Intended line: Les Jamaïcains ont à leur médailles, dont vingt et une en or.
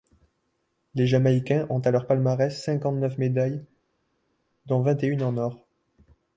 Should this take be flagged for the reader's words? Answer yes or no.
yes